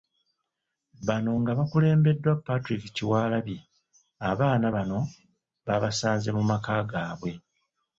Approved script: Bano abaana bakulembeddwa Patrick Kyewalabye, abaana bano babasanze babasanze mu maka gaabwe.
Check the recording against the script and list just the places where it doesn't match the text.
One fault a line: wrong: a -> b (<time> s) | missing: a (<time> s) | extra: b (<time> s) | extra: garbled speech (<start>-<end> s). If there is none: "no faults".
wrong: abaana -> nga (1.4 s)
missing: babasanze (6.3 s)